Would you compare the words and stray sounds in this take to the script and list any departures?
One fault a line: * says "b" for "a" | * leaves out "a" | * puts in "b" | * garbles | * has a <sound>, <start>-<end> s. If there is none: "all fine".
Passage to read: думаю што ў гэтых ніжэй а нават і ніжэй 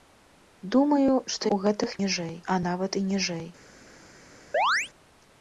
* has a chirp, 4.5-4.9 s